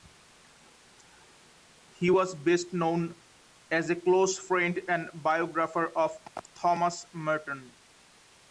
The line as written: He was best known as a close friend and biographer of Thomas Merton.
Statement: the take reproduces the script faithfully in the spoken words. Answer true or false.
true